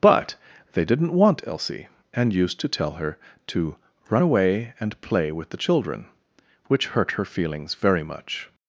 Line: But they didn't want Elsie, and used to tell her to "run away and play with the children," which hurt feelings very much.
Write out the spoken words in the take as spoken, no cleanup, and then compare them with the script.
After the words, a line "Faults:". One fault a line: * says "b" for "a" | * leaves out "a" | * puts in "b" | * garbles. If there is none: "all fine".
But they didn't want Elsie, and used to tell her to "run away and play with the children," which hurt her feelings very much.
Faults:
* puts in "her"